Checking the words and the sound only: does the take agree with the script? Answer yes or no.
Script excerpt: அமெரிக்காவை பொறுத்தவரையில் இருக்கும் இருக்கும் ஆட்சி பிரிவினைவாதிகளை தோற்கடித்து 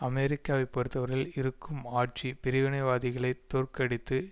no